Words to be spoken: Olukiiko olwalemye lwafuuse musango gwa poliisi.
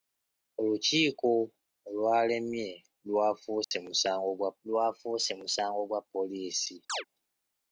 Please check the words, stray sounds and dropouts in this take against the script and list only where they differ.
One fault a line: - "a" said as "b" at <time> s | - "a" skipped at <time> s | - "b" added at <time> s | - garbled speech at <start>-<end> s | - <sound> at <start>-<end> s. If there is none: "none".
- dropout at 3.6-3.7 s
- "lwafuuse musango gwa" added at 4.7 s
- chirp at 6.9-7.0 s